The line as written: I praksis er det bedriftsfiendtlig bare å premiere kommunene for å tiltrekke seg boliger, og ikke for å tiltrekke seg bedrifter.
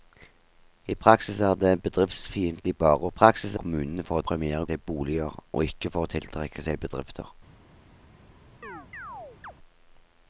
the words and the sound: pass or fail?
fail